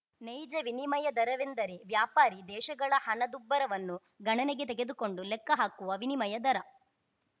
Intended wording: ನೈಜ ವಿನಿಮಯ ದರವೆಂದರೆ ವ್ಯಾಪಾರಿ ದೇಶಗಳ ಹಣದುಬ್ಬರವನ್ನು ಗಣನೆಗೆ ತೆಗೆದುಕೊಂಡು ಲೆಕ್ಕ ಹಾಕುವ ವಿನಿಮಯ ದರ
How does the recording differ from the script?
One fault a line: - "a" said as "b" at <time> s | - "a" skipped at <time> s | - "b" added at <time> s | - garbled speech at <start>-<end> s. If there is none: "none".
none